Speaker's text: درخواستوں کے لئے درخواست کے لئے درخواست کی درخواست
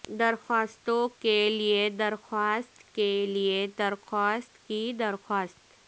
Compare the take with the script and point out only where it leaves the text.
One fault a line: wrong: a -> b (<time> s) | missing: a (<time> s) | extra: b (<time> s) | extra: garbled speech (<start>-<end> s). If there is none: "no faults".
no faults